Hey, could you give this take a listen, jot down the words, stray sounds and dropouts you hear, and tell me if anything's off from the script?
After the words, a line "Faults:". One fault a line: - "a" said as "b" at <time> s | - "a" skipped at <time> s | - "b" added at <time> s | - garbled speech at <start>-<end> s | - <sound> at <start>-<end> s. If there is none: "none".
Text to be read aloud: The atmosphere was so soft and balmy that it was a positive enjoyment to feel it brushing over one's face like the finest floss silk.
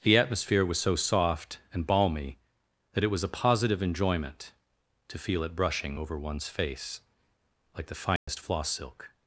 The atmosphere was so soft and balmy that it was a positive enjoyment to feel it brushing over one's face like the finest floss silk.
Faults:
- dropout at 8.2-8.3 s